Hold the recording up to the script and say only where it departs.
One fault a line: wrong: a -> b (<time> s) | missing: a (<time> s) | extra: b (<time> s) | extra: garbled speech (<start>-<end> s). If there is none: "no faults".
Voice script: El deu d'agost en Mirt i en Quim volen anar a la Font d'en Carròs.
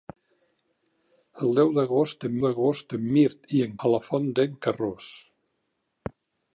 extra: d'agost en (2.4 s)
missing: Quim volen anar (3.7 s)